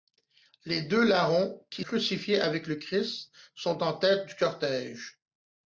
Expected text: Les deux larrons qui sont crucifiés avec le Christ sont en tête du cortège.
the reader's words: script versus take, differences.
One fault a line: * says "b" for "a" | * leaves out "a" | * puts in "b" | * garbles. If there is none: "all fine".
* leaves out "sont"